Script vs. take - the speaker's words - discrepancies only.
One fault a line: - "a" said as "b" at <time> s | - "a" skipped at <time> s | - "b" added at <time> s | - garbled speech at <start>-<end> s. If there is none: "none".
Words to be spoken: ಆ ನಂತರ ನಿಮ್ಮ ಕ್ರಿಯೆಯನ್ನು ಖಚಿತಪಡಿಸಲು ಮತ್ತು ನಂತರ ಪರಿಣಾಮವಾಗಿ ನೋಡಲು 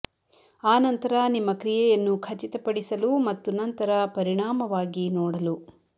none